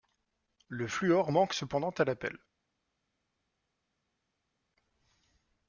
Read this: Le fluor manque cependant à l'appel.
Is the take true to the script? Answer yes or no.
yes